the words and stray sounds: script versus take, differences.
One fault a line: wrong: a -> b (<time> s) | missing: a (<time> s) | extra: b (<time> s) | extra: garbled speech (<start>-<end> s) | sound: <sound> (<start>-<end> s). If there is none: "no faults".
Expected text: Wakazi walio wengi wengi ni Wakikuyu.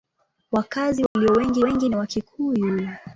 sound: dropout (1.1-1.2 s)